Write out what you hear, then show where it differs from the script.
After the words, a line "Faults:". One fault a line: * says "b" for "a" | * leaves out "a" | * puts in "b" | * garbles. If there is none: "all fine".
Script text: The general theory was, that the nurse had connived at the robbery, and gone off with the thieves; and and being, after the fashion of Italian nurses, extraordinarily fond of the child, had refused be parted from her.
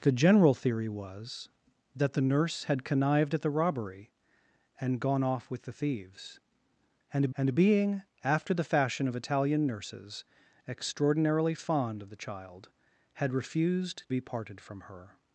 The general theory was, that the nurse had connived at the robbery, and gone off with the thieves; and and being, after the fashion of Italian nurses, extraordinarily fond of the child, had refused be parted from her.
Faults:
all fine